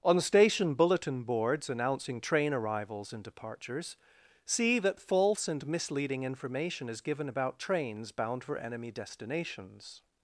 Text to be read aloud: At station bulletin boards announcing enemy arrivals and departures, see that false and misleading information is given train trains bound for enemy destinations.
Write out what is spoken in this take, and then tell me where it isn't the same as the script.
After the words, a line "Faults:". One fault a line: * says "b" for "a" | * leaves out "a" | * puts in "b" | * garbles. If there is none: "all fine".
On station bulletin boards announcing train arrivals and departures, see that false and misleading information is given about trains bound for enemy destinations.
Faults:
* says "On" for "At"
* says "train" for "enemy"
* says "about" for "train"